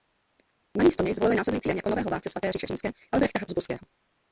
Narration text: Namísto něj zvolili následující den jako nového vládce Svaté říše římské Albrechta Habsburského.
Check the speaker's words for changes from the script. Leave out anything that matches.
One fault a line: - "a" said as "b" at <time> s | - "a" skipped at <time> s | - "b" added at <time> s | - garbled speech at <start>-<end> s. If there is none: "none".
none